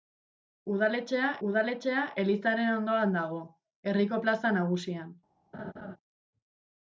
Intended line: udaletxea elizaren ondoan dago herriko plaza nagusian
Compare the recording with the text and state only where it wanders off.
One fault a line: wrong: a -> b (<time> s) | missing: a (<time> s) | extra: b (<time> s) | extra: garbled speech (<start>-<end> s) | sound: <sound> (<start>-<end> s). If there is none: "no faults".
extra: udaletxea (1.5 s)
sound: laugh (5.5-6.0 s)